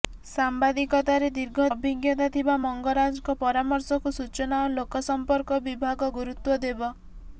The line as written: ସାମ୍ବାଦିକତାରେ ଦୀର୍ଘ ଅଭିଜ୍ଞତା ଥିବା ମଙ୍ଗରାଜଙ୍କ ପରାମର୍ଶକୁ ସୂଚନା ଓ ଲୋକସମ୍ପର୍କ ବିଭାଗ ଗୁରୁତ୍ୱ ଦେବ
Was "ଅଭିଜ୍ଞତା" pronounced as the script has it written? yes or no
yes